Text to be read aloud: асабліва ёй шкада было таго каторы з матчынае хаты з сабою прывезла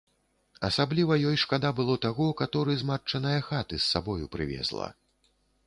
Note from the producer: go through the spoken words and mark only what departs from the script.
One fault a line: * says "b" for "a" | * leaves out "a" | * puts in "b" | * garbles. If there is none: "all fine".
all fine